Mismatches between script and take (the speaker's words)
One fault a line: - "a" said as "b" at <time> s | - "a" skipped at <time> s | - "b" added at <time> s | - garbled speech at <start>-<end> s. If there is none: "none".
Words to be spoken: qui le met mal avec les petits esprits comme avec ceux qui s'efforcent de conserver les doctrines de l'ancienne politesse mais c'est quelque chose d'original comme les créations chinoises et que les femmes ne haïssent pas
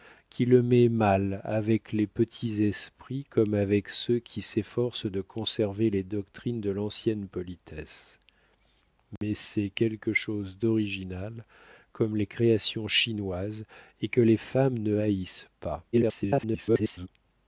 - garbled speech at 15.9-17.1 s